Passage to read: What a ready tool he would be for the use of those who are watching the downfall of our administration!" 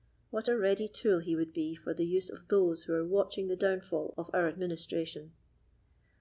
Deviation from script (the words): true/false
false